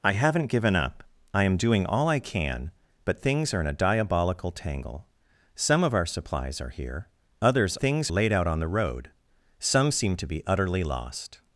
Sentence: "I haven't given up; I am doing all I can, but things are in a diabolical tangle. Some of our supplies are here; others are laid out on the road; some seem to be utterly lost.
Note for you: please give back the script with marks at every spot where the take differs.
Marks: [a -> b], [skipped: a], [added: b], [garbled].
"I haven't given up; I am doing all I can, but things are in a diabolical tangle. Some of our supplies are here; others [are -> things] laid out on the road; some seem to be utterly lost.